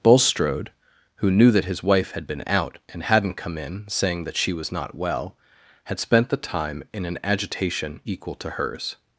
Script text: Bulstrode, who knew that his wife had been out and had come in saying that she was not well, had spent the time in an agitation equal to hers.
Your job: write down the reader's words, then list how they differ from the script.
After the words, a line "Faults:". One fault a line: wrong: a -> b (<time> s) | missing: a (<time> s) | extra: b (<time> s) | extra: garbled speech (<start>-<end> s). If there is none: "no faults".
Bulstrode, who knew that his wife had been out and hadn't come in saying that she was not well, had spent the time in an agitation equal to hers.
Faults:
wrong: had -> hadn't (3.0 s)